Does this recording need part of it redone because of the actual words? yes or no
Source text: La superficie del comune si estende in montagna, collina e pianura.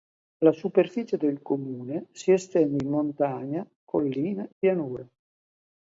yes